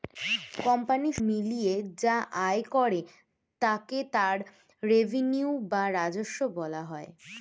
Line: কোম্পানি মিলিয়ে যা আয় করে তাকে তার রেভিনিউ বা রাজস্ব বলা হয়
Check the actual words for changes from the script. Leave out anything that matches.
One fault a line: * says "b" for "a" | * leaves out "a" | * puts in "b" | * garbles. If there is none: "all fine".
all fine